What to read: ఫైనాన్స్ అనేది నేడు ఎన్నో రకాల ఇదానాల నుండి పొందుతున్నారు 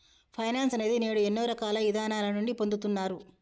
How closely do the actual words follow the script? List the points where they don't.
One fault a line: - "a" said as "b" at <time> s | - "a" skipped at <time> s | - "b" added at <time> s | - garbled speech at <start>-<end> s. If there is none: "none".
none